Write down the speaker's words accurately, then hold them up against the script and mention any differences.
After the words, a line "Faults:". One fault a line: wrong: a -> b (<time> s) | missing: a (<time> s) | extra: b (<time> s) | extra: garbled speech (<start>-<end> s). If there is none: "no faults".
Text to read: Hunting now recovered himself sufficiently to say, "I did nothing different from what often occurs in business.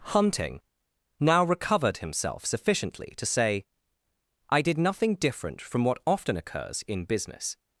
Hunting now recovered himself sufficiently to say, "I did nothing different from what often occurs in business.
Faults:
no faults